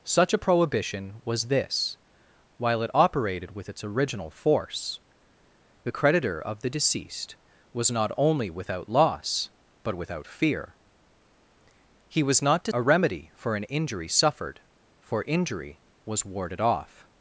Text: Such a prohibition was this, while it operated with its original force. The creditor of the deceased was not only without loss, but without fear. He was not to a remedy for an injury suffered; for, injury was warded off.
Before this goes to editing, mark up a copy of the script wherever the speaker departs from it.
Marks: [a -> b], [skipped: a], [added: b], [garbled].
Such a prohibition was this, while it operated with its original force. The creditor of the deceased was not only without loss, but without fear. He was not to a remedy for an injury suffered; for, injury was warded off.